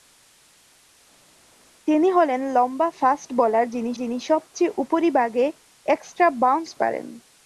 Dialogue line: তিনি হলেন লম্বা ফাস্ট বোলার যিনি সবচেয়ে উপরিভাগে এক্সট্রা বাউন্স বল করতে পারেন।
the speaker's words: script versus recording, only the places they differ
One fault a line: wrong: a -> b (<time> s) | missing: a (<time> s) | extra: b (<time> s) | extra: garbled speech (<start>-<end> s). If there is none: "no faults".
extra: যিনি (3.9 s)
missing: বল করতে (6.7 s)